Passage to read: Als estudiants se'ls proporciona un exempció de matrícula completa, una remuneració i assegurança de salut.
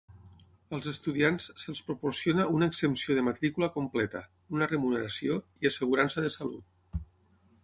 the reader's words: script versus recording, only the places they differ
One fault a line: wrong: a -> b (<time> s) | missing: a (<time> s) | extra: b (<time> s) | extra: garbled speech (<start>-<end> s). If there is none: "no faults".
wrong: un -> una (2.6 s)